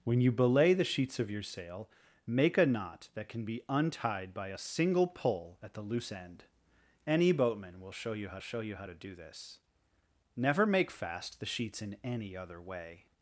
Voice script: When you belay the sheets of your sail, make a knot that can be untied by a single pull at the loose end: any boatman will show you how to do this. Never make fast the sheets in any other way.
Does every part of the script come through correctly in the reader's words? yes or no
no